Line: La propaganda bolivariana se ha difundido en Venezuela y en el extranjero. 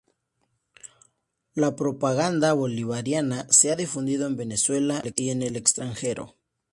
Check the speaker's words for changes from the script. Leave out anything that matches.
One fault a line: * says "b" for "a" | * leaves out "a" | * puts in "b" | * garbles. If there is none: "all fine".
all fine